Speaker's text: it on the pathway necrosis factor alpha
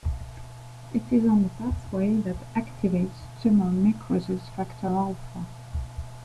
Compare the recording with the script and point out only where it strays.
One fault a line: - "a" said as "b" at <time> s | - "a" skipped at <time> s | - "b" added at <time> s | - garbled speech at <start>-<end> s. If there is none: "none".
- "is" added at 1.1 s
- "that activates tumor" added at 2.2 s